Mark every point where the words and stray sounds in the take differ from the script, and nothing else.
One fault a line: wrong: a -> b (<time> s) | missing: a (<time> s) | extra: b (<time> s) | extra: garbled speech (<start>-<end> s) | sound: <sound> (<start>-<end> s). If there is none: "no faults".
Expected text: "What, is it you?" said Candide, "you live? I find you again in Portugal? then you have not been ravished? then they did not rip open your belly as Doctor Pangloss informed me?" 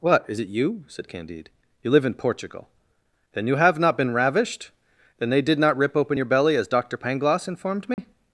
missing: I find you again (2.0 s)
sound: dropout (7.9-8.0 s)